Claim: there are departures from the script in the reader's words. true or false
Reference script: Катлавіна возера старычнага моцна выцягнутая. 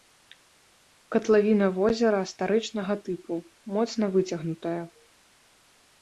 true